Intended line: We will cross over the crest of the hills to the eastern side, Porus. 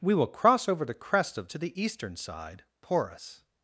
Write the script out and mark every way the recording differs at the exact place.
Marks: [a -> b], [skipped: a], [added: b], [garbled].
We will cross over the crest of [skipped: the hills] to the eastern side, Porus.